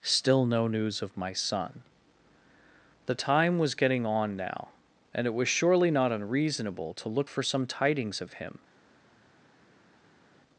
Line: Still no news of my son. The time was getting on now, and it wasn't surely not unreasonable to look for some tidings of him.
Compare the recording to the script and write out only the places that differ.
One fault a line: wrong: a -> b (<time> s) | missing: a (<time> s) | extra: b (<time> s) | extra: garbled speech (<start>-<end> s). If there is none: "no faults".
wrong: wasn't -> was (5.3 s)